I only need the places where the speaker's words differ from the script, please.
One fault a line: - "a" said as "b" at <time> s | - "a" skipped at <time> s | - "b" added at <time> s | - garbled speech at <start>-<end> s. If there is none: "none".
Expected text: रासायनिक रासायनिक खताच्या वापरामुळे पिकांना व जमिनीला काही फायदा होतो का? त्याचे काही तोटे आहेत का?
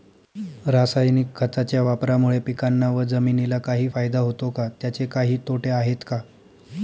- "रासायनिक" skipped at 1.3 s